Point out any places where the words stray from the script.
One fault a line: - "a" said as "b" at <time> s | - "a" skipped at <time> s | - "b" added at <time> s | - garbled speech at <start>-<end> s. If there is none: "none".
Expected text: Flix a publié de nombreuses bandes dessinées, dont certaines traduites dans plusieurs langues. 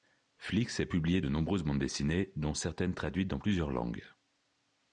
none